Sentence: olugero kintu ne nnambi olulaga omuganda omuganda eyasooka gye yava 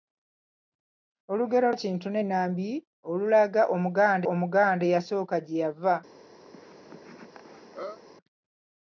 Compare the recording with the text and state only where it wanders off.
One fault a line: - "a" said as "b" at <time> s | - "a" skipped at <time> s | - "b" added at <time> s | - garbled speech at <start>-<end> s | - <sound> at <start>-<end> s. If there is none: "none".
- cough at 6.5-8.0 s